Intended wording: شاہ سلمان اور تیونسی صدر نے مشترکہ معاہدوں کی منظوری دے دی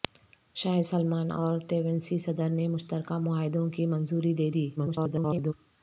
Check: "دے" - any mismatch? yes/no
no